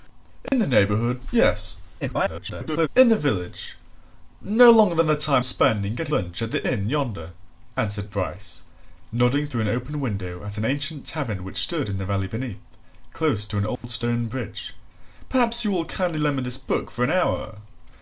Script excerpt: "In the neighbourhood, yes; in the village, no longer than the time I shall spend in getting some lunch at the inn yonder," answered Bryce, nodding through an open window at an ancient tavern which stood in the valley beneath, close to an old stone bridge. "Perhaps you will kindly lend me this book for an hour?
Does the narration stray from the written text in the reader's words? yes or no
yes